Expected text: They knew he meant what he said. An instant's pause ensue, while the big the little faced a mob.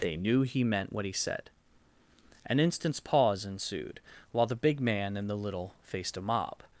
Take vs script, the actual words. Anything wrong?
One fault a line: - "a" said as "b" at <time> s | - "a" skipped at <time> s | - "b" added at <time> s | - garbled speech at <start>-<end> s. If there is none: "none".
- "ensue" said as "ensued" at 3.5 s
- "man and" added at 4.8 s